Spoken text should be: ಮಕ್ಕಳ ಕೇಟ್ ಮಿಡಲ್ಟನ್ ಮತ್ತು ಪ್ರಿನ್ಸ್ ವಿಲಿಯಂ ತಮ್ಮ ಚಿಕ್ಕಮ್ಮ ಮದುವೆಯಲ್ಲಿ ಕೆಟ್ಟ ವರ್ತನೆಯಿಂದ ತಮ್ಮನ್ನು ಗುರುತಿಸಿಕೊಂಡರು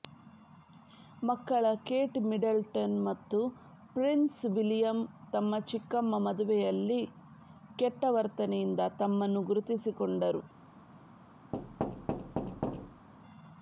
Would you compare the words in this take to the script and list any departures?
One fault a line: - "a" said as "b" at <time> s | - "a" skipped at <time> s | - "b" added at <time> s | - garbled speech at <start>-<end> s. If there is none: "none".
none